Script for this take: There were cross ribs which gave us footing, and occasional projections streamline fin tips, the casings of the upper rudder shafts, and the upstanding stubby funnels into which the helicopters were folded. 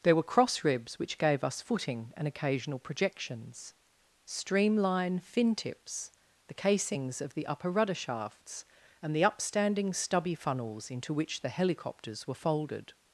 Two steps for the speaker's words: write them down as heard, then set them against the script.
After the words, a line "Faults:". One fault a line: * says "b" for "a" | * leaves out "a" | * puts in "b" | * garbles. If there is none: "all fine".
There were cross ribs which gave us footing, and occasional projections streamline fin tips, the casings of the upper rudder shafts, and the upstanding stubby funnels into which the helicopters were folded.
Faults:
all fine